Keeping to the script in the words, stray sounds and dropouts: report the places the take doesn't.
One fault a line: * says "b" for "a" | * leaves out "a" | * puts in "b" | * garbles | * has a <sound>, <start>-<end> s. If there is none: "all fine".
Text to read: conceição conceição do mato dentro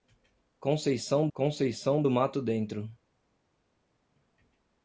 all fine